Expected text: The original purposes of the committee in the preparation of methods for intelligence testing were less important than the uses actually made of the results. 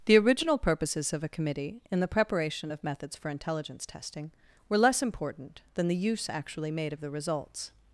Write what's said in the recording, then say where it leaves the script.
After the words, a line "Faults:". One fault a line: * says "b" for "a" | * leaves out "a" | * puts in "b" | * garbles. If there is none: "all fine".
The original purposes of a committee in the preparation of methods for intelligence testing were less important than the use actually made of the results.
Faults:
* says "a" for "the"
* says "use" for "uses"